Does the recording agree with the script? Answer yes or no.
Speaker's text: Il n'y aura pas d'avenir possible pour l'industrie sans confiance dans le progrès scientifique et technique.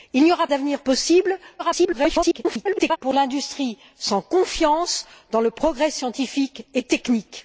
no